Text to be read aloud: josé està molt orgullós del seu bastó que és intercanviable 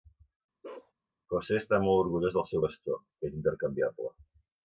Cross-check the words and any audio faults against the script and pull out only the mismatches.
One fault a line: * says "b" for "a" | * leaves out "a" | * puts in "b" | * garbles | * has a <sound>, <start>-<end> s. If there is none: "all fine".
* has a bark, 0.6-0.9 s